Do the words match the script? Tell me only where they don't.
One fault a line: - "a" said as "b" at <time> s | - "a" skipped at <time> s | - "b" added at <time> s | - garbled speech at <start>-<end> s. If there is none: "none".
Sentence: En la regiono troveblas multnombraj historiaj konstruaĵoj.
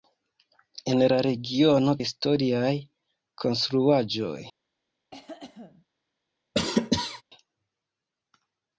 - "troveblas multnombraj" skipped at 1.9 s